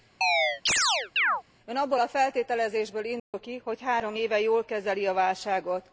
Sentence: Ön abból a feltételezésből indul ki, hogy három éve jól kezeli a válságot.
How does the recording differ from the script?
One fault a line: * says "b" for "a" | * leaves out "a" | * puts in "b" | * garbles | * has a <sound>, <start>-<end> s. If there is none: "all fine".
* has a chirp, 0.2-1.4 s
* has a dropout, 3.2-3.3 s